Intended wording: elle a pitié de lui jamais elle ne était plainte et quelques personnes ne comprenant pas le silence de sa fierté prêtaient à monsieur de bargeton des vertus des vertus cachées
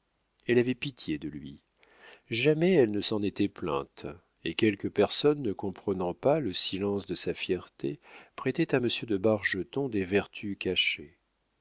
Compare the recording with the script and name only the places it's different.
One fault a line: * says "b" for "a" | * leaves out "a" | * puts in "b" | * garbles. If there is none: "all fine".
* says "avait" for "a"
* puts in "s'en"
* leaves out "des vertus"